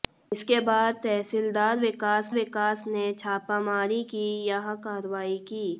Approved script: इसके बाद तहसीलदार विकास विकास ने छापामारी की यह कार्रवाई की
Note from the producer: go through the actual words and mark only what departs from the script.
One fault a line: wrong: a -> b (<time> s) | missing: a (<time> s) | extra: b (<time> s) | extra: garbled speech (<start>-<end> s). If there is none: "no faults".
no faults